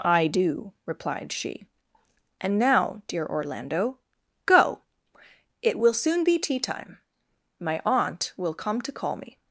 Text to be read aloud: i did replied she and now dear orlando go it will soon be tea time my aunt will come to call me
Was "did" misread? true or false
true